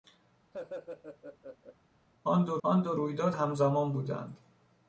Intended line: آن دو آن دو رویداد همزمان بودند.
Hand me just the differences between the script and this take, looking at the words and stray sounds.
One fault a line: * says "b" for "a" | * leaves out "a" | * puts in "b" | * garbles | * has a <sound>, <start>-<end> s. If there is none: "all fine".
* has a laugh, 0.5-1.8 s